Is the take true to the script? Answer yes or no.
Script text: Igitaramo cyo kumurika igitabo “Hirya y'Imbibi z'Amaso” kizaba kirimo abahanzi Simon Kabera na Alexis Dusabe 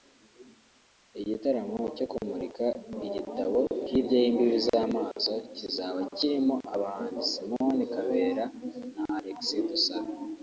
yes